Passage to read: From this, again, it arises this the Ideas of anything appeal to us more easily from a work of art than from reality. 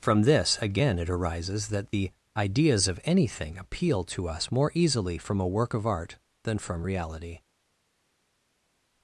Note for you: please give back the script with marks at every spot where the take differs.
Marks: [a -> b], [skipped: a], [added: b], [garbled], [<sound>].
From this, again, it arises [this -> that] the Ideas of anything appeal to us more easily from a work of art than from reality.